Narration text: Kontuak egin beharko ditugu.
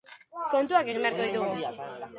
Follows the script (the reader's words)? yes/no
yes